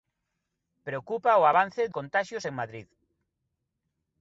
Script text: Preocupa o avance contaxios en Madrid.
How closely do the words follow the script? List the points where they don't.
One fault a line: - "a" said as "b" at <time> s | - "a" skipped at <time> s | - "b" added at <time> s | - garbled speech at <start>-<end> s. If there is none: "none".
none